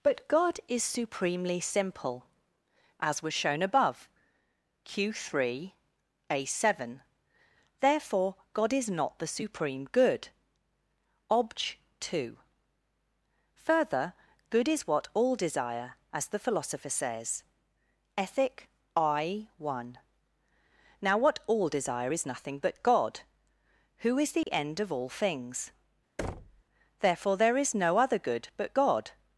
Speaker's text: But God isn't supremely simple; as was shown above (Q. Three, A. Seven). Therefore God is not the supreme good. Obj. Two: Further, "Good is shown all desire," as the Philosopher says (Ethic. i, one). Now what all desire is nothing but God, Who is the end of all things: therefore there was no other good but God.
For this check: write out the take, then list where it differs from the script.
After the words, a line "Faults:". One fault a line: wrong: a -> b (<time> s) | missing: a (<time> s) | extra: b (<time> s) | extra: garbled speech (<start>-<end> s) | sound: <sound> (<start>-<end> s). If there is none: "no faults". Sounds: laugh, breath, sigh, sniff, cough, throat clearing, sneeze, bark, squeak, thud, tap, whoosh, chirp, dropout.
But God is supremely simple; as was shown above (Q. Three, A. Seven). Therefore God is not the supreme good. Obj. Two: Further, "Good is what all desire," as the Philosopher says (Ethic. i, one). Now what all desire is nothing but God, Who is the end of all things: therefore there is no other good but God.
Faults:
wrong: isn't -> is (0.7 s)
wrong: shown -> what (14.9 s)
sound: dropout (24.4-24.5 s)
sound: thud (26.2-26.6 s)
wrong: was -> is (27.6 s)